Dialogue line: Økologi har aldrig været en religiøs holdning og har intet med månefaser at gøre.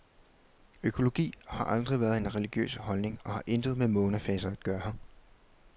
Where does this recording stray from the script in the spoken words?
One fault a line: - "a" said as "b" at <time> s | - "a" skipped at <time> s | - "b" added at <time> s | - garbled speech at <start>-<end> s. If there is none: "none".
none